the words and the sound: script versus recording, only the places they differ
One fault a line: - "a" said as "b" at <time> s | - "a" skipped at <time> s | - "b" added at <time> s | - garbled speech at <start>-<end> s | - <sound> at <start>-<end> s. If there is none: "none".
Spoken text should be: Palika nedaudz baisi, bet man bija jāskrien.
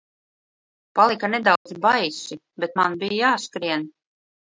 - dropout at 1.6-1.7 s